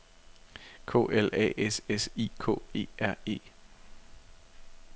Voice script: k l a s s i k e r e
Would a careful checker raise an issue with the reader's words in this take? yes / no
no